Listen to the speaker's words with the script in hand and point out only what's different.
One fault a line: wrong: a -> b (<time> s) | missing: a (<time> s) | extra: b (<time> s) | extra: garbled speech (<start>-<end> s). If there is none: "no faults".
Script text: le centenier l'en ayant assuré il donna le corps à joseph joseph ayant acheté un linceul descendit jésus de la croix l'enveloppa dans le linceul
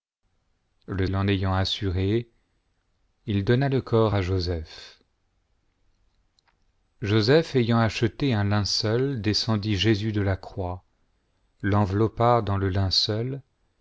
missing: centenier (1.1 s)